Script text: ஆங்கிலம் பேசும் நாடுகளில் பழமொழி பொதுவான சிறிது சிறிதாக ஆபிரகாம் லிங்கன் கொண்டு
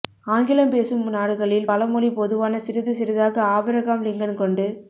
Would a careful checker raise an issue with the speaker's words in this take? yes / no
no